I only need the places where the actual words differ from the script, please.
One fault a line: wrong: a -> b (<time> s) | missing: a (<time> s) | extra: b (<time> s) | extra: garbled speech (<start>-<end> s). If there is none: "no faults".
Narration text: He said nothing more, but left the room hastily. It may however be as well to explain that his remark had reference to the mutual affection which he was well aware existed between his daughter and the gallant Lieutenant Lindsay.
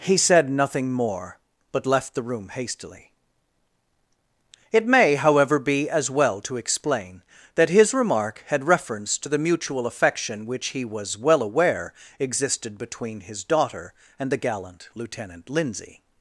no faults